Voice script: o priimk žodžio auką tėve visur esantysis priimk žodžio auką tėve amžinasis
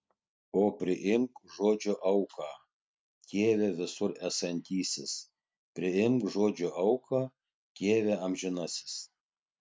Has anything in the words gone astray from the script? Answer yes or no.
no